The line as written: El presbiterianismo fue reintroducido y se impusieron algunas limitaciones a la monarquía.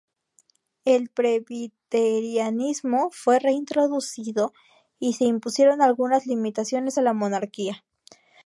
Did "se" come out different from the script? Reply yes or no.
no